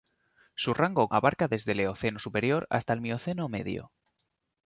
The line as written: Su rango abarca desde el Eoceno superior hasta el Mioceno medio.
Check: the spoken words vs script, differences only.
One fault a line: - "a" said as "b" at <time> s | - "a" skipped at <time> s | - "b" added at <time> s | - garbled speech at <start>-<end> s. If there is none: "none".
none